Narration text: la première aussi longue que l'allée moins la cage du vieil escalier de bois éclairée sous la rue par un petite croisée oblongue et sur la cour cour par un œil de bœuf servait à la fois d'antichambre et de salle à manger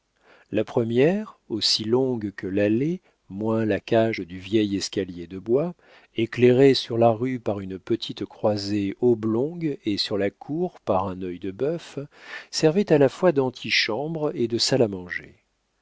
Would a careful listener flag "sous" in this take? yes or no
yes